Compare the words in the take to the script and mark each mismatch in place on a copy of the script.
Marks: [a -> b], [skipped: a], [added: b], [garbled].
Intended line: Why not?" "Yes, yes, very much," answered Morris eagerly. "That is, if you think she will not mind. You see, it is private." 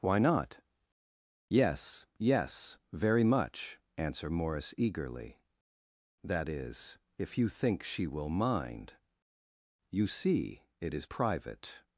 Why not?" "Yes, yes, very much," [answered -> answer] Morris eagerly. "That is, if you think she will [skipped: not] mind. You see, it is private."